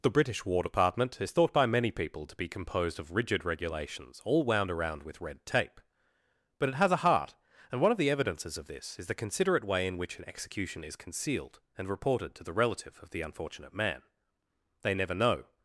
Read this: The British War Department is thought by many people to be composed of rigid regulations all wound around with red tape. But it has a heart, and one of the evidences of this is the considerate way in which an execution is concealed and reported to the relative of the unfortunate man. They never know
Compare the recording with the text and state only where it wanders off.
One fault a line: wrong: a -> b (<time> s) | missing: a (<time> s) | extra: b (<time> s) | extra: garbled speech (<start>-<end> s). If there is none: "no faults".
no faults